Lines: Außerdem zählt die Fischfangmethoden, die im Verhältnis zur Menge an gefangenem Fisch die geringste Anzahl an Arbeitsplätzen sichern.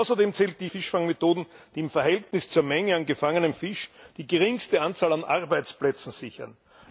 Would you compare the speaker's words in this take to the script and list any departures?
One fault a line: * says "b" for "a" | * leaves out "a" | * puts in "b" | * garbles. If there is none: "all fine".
all fine